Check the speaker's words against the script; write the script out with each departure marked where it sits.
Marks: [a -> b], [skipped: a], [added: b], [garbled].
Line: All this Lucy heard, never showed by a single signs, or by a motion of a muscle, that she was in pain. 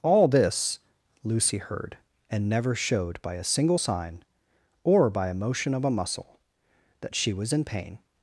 All this Lucy heard, [added: and] never showed by a single [signs, -> sign] or by a motion of a muscle, that she was in pain.